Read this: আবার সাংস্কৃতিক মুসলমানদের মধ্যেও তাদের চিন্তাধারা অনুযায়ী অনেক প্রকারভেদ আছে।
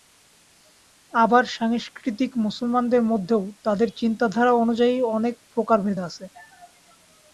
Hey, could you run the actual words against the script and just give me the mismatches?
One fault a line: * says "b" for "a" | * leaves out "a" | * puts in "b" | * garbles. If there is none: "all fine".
all fine